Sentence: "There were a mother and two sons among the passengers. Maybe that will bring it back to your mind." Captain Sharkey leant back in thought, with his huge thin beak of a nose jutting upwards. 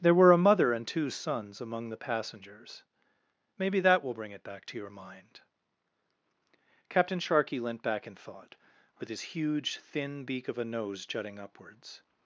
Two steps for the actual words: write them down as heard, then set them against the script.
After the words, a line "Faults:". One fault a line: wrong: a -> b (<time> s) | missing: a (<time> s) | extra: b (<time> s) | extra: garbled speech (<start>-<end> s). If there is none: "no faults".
"There were a mother and two sons among the passengers. Maybe that will bring it back to your mind." Captain Sharkey leant back in thought, with his huge thin beak of a nose jutting upwards.
Faults:
no faults